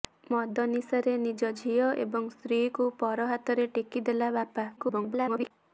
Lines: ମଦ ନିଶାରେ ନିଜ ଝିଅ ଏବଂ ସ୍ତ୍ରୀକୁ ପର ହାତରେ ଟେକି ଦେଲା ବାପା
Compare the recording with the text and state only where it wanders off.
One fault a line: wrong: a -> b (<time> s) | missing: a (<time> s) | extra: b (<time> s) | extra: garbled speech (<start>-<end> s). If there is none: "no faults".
extra: garbled speech (4.8-5.5 s)